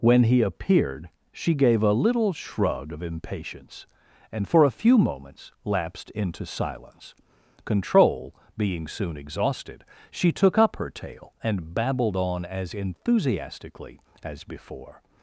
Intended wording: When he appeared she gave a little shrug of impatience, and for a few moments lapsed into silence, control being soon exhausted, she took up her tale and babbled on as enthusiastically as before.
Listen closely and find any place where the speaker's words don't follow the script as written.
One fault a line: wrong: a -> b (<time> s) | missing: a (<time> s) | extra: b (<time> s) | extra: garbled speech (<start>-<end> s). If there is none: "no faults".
no faults